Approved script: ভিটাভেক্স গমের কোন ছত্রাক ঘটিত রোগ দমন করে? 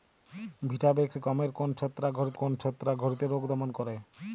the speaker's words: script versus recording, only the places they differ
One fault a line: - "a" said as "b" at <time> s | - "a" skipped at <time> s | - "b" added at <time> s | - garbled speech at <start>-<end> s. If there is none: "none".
- "কোন ছত্রাক ঘটিত" added at 2.3 s